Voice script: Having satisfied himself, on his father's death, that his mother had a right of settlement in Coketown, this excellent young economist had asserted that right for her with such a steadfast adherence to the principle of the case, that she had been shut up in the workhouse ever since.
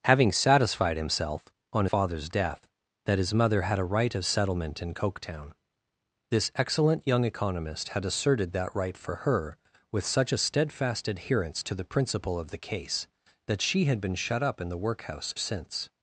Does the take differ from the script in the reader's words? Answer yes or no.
yes